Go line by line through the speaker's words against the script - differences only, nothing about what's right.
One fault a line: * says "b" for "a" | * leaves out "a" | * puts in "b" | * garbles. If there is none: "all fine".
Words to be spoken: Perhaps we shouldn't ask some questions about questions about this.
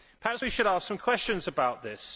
* says "should" for "shouldn't"
* leaves out "questions about"